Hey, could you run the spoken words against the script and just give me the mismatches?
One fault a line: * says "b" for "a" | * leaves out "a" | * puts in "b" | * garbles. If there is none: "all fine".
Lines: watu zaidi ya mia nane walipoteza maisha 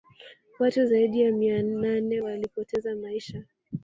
all fine